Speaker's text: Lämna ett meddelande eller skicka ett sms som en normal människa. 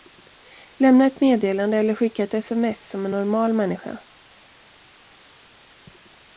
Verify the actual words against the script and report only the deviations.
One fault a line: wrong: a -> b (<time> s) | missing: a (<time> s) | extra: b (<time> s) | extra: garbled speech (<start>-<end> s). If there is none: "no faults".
no faults